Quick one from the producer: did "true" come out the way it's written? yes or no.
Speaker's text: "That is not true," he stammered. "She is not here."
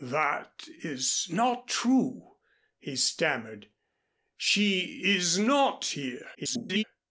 yes